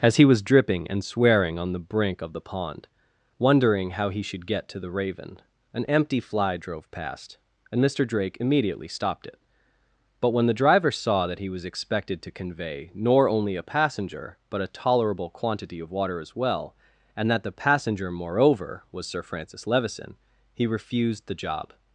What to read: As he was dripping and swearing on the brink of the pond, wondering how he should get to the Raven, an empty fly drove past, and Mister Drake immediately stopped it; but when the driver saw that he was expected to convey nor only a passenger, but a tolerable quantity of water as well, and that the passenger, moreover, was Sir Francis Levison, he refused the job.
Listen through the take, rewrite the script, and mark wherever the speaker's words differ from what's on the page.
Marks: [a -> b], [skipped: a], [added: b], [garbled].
As he was dripping and swearing on the brink of the pond, wondering how he should get to the Raven, an empty fly drove past, and Mister Drake immediately stopped it; but when the driver saw that he was expected to convey nor only a passenger, but a tolerable quantity of water as well, and that the passenger, moreover, was Sir Francis Levison, he refused the job.